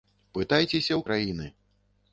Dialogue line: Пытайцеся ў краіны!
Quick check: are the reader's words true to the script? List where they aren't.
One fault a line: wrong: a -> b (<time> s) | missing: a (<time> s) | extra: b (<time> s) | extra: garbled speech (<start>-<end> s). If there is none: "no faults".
no faults